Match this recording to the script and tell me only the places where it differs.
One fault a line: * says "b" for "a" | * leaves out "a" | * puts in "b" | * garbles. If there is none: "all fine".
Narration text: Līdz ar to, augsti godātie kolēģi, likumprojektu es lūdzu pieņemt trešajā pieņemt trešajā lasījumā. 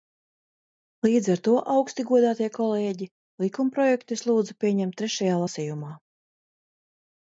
* leaves out "pieņemt trešajā"